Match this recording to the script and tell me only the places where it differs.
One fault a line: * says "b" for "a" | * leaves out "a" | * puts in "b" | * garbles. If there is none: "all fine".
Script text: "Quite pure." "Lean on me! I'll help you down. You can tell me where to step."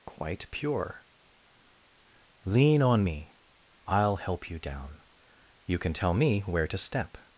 all fine